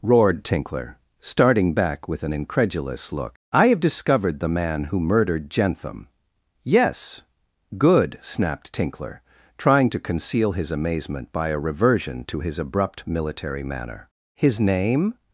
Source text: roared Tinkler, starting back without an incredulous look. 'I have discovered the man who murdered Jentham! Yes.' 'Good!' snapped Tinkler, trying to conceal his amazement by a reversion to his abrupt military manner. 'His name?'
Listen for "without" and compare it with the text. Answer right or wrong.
wrong